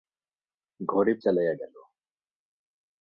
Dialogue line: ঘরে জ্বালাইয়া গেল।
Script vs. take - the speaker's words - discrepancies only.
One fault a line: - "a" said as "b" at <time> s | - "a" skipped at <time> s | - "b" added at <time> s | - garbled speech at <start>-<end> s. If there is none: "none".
none